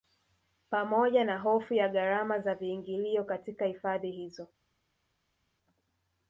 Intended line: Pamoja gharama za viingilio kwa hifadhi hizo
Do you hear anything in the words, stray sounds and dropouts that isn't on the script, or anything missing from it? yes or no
yes